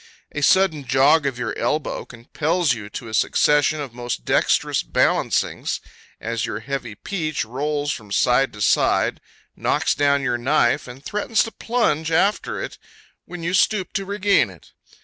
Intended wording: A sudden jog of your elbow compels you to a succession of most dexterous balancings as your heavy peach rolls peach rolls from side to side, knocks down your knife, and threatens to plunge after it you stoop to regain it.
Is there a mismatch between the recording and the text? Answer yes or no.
yes